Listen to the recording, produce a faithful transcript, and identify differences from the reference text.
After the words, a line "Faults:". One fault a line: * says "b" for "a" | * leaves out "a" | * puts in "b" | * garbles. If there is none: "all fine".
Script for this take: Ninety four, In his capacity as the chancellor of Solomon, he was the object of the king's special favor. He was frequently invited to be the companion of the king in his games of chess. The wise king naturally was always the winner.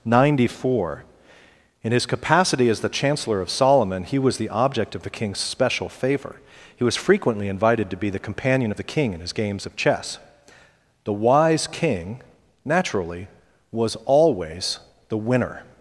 Ninety four, In his capacity as the chancellor of Solomon, he was the object of the king's special favor. He was frequently invited to be the companion of the king in his games of chess. The wise king naturally was always the winner.
Faults:
all fine